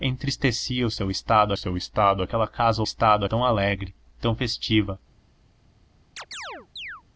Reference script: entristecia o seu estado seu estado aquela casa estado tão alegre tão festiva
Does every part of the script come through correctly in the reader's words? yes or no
yes